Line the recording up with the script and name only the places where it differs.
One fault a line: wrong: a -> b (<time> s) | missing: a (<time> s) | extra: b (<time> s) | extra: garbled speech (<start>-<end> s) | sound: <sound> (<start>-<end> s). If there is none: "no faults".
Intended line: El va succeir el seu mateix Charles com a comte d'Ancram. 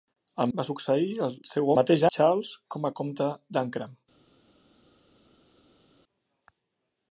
no faults